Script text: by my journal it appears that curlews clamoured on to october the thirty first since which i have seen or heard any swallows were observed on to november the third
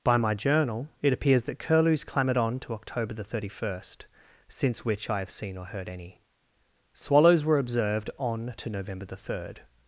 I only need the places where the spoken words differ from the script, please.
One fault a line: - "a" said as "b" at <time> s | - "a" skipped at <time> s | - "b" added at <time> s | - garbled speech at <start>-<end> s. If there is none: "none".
none